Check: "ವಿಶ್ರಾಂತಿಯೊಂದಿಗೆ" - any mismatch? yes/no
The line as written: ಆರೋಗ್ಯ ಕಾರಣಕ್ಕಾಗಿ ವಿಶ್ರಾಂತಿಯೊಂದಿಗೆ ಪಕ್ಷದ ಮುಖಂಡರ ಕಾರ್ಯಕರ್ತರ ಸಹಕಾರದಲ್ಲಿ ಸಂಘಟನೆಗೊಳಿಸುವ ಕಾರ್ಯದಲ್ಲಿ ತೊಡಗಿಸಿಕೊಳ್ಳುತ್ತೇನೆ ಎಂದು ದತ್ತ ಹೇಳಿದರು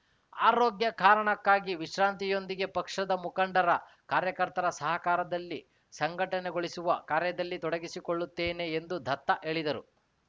no